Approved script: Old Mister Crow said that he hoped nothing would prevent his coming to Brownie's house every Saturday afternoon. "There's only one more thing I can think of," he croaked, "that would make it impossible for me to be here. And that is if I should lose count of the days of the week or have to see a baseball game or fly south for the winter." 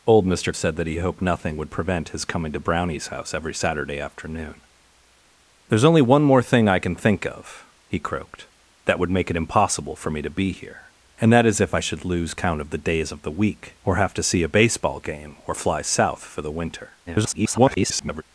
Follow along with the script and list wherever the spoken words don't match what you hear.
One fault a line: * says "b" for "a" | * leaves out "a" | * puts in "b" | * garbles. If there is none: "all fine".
* leaves out "Crow"
* garbles